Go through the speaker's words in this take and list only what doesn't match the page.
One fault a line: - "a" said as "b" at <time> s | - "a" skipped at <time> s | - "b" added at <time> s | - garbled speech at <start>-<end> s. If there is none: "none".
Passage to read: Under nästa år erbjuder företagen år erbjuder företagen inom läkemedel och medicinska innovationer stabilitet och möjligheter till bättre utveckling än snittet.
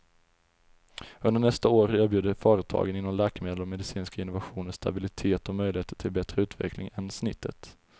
- "år erbjuder företagen" skipped at 3.0 s